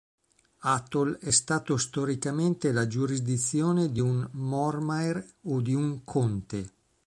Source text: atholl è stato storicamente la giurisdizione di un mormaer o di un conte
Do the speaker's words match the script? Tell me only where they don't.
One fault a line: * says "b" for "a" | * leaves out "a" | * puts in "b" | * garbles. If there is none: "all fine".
all fine